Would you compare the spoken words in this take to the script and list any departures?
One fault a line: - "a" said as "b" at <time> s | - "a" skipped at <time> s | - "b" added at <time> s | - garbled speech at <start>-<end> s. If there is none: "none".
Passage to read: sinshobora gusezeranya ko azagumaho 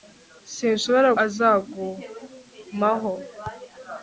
- "gusezeranya ko" skipped at 1.1 s